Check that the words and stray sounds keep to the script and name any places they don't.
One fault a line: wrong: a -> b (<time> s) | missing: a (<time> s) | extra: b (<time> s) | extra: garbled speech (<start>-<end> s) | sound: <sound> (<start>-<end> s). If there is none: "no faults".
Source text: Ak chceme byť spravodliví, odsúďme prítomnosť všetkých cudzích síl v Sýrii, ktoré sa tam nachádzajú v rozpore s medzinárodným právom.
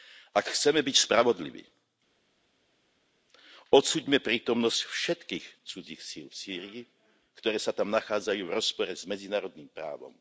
no faults